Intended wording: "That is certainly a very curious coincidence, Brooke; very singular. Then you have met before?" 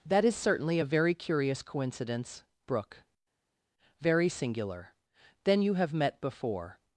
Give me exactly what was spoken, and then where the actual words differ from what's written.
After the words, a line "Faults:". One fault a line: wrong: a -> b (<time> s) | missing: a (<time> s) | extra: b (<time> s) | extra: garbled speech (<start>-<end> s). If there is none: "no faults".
"That is certainly a very curious coincidence, Brooke; very singular. Then you have met before?"
Faults:
no faults